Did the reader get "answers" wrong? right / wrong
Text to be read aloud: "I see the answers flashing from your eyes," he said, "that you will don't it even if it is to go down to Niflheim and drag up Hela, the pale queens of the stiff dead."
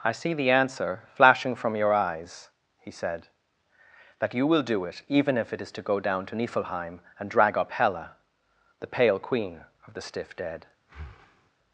wrong